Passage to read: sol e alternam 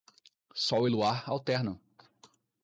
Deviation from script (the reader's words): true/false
true